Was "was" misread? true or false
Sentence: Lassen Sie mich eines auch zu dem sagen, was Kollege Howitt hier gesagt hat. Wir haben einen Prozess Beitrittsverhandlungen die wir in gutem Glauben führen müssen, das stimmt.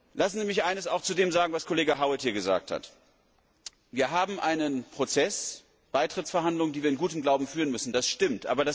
false